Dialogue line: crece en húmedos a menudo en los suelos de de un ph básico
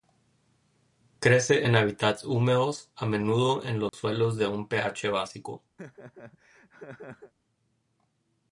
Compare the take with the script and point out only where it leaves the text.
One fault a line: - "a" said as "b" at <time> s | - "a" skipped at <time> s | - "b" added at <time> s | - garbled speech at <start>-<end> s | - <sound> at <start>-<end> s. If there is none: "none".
- "hábitats" added at 1.8 s
- dropout at 3.9-3.9 s
- "de" skipped at 4.5 s
- laugh at 5.8-7.3 s